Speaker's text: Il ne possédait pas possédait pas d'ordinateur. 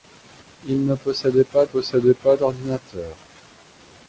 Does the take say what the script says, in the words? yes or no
yes